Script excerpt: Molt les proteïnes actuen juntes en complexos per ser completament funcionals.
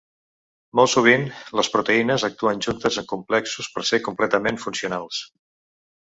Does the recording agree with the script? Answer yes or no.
no